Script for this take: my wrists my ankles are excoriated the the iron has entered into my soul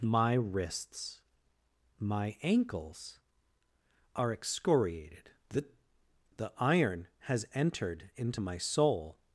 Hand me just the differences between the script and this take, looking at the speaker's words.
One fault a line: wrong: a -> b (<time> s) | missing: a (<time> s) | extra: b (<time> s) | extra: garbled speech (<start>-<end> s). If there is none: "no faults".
no faults